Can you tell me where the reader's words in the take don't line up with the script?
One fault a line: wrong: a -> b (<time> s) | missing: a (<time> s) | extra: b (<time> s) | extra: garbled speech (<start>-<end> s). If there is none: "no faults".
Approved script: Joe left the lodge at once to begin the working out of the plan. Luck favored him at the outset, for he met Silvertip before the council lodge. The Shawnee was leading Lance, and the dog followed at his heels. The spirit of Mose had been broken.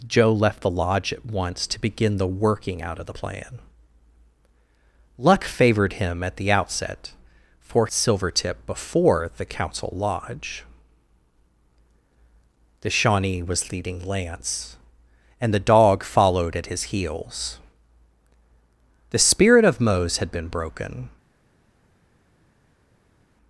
missing: he met (7.9 s)